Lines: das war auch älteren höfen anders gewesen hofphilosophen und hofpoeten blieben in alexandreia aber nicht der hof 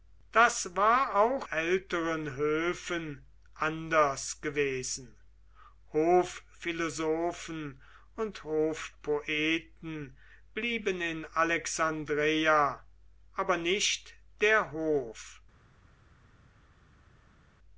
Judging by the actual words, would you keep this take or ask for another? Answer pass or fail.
pass